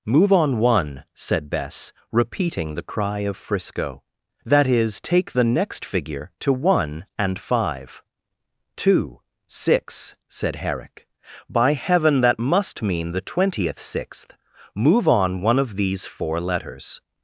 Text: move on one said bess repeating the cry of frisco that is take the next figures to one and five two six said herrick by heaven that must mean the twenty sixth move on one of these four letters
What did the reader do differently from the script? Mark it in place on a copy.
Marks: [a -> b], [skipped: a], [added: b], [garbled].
move on one said bess repeating the cry of frisco that is take the next [figures -> figure] to one and five two six said herrick by heaven that must mean the [twenty -> twentieth] sixth move on one of these four letters